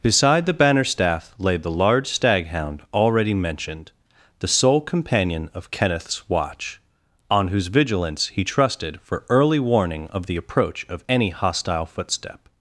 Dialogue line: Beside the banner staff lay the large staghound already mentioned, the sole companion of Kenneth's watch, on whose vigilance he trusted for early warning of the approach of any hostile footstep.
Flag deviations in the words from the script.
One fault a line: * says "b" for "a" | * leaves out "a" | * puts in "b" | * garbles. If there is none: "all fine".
all fine